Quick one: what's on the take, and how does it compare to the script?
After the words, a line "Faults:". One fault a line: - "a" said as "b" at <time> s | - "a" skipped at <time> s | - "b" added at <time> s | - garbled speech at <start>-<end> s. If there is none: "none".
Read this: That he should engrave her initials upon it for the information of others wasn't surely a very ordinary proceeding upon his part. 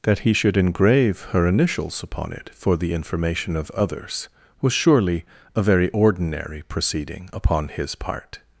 That he should engrave her initials upon it for the information of others was surely a very ordinary proceeding upon his part.
Faults:
- "wasn't" said as "was" at 4.6 s